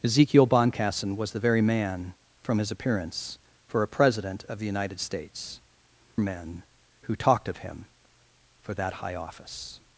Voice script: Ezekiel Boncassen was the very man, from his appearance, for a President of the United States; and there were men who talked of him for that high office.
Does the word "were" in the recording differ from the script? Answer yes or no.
yes